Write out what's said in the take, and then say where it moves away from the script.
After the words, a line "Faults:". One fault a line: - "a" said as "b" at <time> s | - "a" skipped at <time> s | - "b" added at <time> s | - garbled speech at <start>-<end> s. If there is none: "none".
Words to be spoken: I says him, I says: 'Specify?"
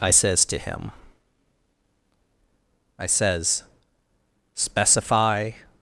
I says to him, I says: 'Specify?"
Faults:
- "to" added at 0.4 s